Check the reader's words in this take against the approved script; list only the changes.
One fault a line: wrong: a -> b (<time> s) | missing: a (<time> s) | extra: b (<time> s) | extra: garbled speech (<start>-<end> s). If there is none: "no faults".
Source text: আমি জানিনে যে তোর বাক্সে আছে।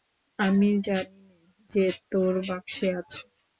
no faults